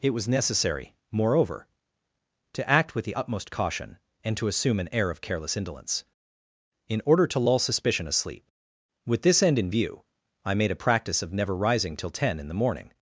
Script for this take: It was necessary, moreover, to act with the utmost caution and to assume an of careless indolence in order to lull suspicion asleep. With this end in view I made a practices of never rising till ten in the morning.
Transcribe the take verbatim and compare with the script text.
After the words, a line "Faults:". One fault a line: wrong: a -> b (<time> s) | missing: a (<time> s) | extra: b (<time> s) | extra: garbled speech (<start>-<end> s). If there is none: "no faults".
It was necessary, moreover, to act with the utmost caution and to assume an air of careless indolence in order to lull suspicion asleep. With this end in view I made a practice of never rising till ten in the morning.
Faults:
extra: air (4.9 s)
wrong: practices -> practice (10.9 s)